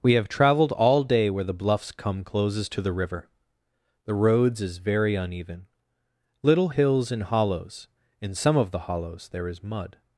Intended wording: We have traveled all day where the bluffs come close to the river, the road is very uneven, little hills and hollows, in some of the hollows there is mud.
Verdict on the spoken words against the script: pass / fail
fail